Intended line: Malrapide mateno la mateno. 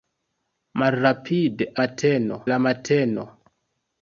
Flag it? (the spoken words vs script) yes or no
no